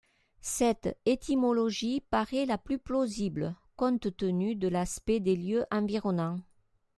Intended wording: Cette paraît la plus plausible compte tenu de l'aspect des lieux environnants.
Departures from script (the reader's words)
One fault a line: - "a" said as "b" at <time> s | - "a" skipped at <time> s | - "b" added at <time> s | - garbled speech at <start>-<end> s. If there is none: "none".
- "étymologie" added at 1.1 s